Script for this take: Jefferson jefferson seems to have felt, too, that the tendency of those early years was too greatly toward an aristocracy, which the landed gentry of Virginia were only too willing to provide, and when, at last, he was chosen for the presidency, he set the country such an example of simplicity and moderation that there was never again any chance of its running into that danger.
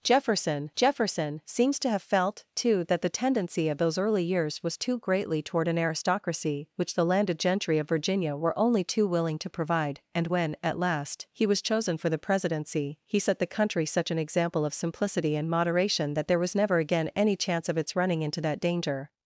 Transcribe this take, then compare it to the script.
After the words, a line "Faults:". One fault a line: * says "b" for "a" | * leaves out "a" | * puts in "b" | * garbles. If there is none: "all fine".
Jefferson jefferson seems to have felt, too, that the tendency of those early years was too greatly toward an aristocracy, which the landed gentry of Virginia were only too willing to provide, and when, at last, he was chosen for the presidency, he set the country such an example of simplicity and moderation that there was never again any chance of its running into that danger.
Faults:
all fine